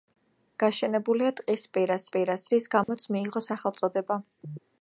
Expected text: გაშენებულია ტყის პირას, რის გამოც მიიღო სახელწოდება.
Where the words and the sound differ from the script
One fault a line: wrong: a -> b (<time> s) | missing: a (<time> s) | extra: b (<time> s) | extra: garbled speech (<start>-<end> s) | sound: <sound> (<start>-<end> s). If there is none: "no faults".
extra: პირას (2.2 s)
sound: dropout (2.8-2.9 s)